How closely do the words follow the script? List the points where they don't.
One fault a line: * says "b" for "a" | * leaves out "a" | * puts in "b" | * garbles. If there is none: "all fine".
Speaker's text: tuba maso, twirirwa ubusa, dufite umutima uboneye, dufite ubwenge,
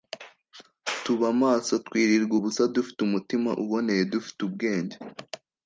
all fine